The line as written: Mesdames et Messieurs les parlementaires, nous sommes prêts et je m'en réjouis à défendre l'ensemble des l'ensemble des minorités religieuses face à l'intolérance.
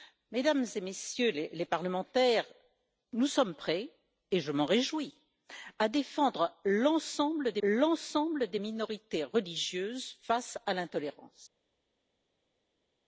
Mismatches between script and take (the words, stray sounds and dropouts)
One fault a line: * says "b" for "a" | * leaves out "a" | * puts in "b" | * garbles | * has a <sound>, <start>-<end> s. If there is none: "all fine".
all fine